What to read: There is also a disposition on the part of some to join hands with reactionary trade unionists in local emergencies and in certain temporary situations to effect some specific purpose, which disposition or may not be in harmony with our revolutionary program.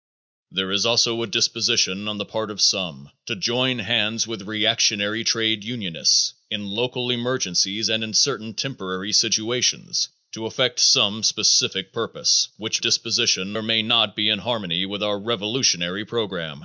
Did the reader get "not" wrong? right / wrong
right